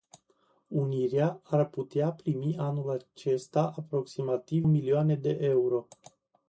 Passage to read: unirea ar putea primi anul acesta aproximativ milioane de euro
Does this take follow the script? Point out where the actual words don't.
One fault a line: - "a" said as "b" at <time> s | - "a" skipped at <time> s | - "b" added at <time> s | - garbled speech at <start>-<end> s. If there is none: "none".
none